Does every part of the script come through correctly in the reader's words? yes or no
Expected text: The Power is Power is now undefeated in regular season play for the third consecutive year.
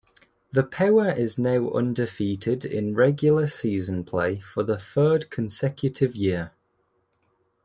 no